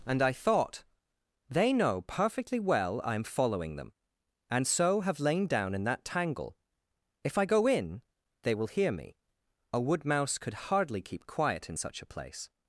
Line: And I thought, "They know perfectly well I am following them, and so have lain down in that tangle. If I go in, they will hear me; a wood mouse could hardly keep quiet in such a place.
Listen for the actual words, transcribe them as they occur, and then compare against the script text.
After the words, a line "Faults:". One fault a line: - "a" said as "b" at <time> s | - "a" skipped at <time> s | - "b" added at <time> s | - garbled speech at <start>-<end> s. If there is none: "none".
And I thought, "They know perfectly well I am following them, and so have lain down in that tangle. If I go in, they will hear me; a wood mouse could hardly keep quiet in such a place.
Faults:
none